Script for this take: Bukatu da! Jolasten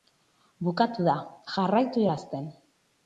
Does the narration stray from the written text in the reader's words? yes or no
yes